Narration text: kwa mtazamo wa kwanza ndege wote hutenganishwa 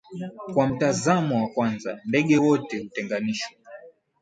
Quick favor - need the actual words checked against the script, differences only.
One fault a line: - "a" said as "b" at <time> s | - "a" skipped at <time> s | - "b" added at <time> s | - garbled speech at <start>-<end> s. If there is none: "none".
none